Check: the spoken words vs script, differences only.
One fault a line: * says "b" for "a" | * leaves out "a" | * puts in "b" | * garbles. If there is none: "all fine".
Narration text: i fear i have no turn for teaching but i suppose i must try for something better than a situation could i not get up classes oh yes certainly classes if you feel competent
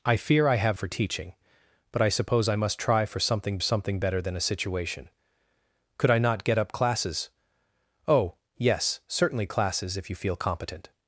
* leaves out "no turn"
* puts in "something"